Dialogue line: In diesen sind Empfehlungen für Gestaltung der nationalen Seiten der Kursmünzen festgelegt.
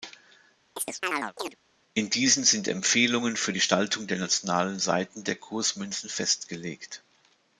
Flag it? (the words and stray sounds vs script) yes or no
yes